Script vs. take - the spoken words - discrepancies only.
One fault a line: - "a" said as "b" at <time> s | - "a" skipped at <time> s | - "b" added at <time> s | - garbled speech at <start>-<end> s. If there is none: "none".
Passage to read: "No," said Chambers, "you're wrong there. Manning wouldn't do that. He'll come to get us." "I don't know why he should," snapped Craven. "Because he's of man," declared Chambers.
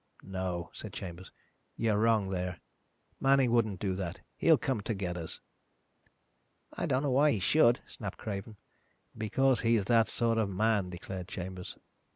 - "that sort" added at 9.9 s